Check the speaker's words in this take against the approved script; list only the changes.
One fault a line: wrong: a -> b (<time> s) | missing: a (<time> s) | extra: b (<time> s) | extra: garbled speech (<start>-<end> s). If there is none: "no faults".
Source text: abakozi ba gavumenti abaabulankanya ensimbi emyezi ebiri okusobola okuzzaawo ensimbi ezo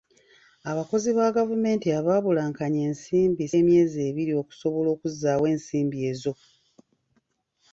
no faults